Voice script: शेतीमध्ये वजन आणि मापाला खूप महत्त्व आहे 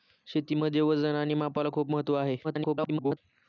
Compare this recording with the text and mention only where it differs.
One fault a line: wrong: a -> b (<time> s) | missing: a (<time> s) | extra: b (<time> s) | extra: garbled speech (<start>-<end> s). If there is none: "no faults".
extra: garbled speech (2.4-3.2 s)